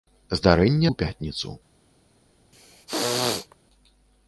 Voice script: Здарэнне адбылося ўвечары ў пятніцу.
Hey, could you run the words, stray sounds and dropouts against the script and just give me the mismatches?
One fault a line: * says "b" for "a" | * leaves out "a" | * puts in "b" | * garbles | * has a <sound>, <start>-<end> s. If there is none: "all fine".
* leaves out "адбылося ўвечары"
* has a throat clearing, 2.5-3.6 s